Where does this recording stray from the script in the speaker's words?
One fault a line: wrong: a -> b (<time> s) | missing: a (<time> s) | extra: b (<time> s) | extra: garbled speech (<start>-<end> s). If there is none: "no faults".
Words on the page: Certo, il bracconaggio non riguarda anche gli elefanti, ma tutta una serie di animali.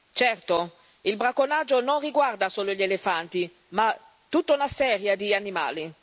wrong: anche -> solo (2.5 s)